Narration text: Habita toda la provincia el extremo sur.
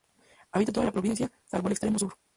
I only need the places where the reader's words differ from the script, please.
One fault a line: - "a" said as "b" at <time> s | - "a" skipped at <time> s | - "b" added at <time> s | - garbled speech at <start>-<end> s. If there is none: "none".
- "salvo" added at 1.4 s